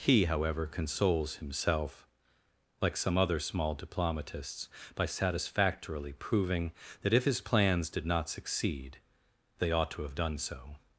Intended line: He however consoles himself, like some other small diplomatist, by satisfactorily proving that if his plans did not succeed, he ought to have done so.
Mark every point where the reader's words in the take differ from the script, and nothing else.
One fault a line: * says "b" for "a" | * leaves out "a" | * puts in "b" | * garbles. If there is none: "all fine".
* says "diplomatists" for "diplomatist"
* says "they" for "he"